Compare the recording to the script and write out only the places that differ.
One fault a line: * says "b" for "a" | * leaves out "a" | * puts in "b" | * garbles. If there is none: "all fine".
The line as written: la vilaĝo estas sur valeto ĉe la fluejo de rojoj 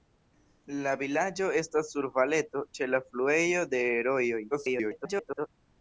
* garbles